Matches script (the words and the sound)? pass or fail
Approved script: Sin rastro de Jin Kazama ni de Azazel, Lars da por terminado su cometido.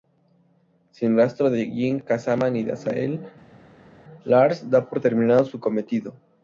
pass